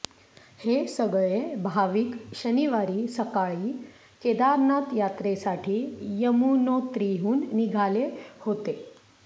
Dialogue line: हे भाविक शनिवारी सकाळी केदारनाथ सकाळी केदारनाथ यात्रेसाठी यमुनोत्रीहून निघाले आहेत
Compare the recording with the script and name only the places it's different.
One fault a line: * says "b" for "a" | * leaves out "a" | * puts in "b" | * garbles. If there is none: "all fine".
* puts in "सगळे"
* leaves out "सकाळी केदारनाथ"
* says "होते" for "आहेत"